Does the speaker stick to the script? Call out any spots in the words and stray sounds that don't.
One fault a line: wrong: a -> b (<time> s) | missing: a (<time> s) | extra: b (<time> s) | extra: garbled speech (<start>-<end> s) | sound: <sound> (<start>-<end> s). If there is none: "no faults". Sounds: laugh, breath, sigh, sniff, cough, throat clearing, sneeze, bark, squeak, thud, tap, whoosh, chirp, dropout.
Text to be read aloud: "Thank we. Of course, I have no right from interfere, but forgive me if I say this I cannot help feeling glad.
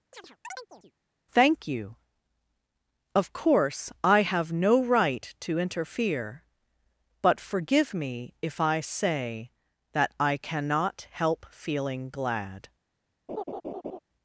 sound: chirp (0.1-0.9 s)
wrong: we -> you (1.7 s)
wrong: from -> to (5.4 s)
wrong: this -> that (9.9 s)
sound: laugh (13.3-14.0 s)